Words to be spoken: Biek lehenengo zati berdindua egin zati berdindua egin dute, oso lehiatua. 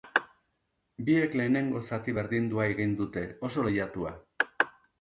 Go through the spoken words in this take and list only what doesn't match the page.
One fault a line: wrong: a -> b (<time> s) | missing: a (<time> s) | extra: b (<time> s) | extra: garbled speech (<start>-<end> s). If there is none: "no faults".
missing: zati berdindua egin (3.0 s)